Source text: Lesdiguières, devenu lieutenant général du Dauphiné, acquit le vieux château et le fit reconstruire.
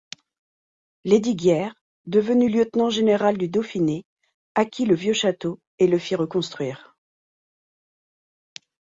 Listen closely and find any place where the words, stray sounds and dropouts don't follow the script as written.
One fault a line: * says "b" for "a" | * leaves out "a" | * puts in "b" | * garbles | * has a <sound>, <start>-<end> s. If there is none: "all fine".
all fine